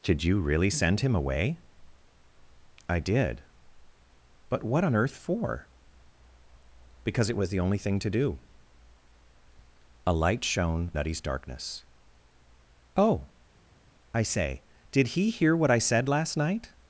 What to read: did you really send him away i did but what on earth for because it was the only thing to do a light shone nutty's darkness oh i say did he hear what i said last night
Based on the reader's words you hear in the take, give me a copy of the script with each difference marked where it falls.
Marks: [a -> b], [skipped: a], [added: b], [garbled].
did you really send him away i did but what on earth for because it was the only thing to do a light shone nutty's darkness oh i say did he hear what i said last night